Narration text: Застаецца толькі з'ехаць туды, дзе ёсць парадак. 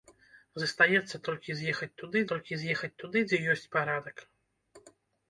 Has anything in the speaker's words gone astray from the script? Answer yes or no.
yes